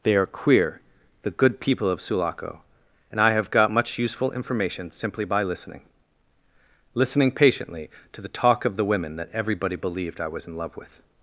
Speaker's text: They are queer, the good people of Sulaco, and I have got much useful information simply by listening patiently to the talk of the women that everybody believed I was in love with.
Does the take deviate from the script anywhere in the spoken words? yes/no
yes